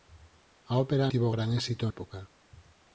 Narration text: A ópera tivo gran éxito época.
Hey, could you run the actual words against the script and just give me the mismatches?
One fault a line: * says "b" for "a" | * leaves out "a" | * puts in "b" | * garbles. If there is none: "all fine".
all fine